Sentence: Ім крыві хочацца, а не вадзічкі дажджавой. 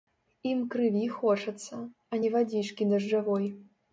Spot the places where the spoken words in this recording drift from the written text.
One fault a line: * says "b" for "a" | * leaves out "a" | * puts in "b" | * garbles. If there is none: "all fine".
all fine